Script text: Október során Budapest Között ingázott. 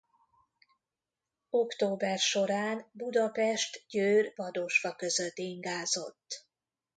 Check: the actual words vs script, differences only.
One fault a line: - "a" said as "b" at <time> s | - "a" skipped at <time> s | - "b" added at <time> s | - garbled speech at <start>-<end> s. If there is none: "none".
- "Győr Vadosfa" added at 3.9 s